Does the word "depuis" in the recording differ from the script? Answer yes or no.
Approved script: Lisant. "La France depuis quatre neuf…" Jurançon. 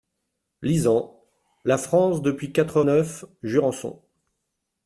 no